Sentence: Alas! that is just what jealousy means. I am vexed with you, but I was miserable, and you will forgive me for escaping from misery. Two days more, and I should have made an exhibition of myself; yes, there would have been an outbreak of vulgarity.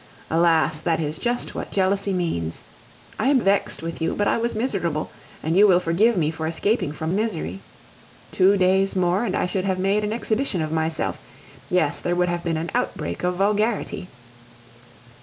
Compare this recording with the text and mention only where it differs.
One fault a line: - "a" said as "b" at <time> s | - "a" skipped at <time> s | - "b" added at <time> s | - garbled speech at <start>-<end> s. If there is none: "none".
none